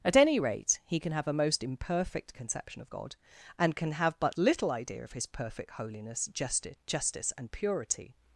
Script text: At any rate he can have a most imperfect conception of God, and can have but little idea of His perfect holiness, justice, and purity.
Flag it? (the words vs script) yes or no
yes